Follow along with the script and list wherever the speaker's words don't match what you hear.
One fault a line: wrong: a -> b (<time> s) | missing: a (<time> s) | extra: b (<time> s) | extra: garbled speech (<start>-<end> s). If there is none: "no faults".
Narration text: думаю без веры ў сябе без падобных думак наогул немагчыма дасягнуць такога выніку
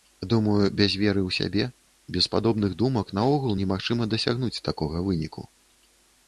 no faults